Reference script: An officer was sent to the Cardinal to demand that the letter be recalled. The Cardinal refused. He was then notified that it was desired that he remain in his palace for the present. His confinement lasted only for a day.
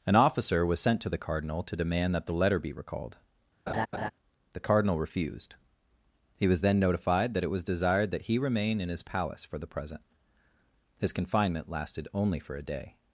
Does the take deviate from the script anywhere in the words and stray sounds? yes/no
yes